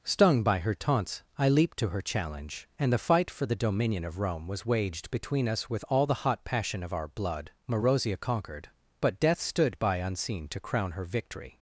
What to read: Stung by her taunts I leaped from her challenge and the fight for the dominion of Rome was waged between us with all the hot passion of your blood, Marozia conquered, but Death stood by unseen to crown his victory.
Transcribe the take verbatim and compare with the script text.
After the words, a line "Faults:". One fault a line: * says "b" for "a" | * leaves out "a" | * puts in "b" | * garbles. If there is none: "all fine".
Stung by her taunts I leaped to her challenge and the fight for the dominion of Rome was waged between us with all the hot passion of our blood, Marozia conquered, but Death stood by unseen to crown her victory.
Faults:
* says "to" for "from"
* says "our" for "your"
* says "her" for "his"